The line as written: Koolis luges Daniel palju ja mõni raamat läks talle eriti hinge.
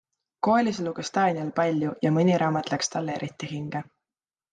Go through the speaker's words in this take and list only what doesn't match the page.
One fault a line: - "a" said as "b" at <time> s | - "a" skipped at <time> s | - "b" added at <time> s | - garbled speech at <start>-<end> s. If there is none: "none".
none